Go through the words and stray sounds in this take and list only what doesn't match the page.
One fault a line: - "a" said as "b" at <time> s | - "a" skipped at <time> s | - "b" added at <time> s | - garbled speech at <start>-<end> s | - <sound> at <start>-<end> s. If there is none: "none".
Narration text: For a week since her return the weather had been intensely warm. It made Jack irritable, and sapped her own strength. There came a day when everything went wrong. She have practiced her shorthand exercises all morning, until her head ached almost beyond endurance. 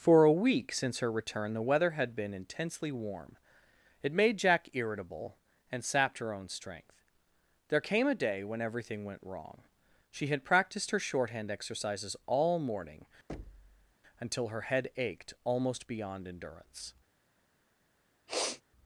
- "have" said as "had" at 10.3 s
- thud at 13.3-13.9 s
- sniff at 18.3-18.6 s